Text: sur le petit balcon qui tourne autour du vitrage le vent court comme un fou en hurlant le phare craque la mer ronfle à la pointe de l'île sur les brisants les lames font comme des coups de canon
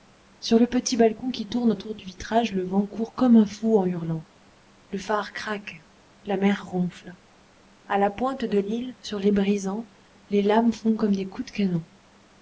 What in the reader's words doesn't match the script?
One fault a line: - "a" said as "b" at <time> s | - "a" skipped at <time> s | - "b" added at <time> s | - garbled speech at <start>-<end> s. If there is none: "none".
none